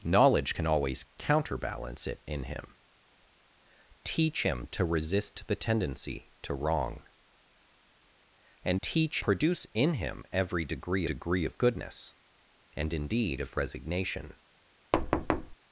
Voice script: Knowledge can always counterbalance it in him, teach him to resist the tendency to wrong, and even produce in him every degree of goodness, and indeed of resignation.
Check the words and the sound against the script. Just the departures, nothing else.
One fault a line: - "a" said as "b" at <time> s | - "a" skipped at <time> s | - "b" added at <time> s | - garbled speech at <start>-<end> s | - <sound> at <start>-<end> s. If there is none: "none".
- "even" said as "teach" at 8.8 s
- "degree" added at 11.0 s
- thud at 14.9-15.6 s